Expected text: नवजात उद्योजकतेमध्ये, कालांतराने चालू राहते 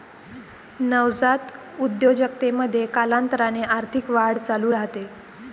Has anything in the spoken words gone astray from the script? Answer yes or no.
yes